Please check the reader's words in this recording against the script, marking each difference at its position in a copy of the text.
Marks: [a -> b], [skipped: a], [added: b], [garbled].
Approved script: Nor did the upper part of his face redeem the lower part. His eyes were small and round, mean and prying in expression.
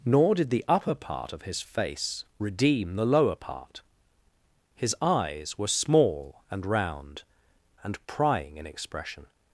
Nor did the upper part of his face redeem the lower part. His eyes were small and round, [skipped: mean] and prying in expression.